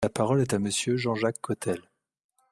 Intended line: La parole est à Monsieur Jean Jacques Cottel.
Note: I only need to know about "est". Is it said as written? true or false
true